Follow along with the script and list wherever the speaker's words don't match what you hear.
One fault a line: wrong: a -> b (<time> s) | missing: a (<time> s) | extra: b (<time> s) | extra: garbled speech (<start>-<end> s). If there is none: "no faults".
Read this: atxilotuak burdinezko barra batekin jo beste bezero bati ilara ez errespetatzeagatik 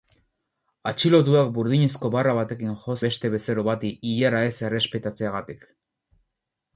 no faults